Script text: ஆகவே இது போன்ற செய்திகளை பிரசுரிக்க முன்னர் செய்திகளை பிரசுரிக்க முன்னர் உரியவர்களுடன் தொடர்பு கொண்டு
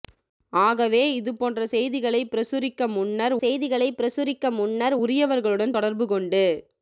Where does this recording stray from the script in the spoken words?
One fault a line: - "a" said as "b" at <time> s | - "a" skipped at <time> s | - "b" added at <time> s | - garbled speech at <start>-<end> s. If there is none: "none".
none